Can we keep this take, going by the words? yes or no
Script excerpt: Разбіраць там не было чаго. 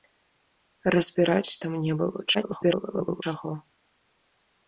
no